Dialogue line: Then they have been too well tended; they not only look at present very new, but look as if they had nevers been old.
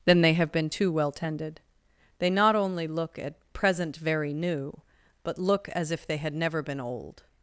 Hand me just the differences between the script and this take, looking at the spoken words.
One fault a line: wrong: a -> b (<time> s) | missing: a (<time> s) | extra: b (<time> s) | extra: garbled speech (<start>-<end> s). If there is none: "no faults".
wrong: nevers -> never (6.3 s)